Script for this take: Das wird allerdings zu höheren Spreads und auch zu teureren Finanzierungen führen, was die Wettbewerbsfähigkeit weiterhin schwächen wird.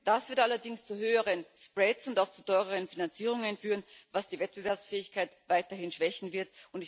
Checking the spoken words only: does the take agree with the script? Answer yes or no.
yes